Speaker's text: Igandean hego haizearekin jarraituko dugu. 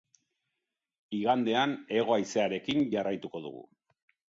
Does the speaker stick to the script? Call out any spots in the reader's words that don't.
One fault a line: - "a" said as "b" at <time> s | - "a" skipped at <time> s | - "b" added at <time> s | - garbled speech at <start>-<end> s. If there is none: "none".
none